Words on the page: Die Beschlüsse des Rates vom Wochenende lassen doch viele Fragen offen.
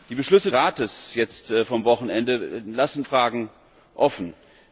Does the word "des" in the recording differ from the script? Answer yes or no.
yes